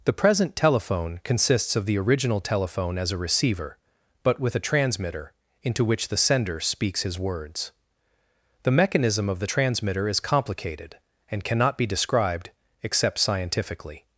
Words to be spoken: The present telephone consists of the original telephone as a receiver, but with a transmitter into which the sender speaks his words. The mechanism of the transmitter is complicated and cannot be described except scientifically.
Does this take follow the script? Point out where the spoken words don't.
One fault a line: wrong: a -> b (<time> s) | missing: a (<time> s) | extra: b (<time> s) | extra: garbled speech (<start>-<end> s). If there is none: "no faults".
no faults